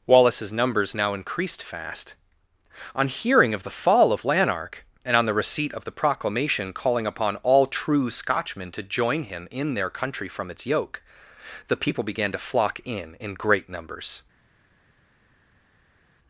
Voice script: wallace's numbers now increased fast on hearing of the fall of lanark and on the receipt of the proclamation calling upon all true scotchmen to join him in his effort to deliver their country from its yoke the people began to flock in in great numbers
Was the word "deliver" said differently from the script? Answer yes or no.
yes